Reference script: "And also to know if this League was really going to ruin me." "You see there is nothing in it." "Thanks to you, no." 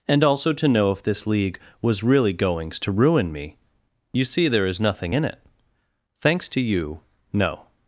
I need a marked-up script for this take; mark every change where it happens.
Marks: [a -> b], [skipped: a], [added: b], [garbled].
"And also to know if this League was really [going -> goings] to ruin me." "You see there is nothing in it." "Thanks to you, no."